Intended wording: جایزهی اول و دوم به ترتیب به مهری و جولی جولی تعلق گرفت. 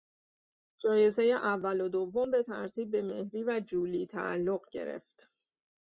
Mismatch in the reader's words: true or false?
true